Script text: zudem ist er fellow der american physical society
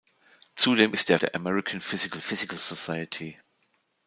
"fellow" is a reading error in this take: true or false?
true